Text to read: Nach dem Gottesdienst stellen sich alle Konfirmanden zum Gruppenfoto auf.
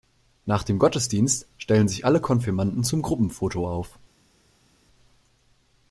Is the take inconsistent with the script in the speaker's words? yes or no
no